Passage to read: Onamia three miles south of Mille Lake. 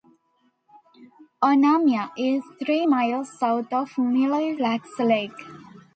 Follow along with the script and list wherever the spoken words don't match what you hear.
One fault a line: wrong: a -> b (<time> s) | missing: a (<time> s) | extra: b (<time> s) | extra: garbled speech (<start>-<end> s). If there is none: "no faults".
extra: is (2.2 s)
extra: Lacs (4.6 s)